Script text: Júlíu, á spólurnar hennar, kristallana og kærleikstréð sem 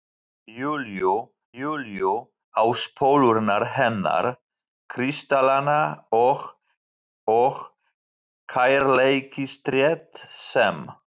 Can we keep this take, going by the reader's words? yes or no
no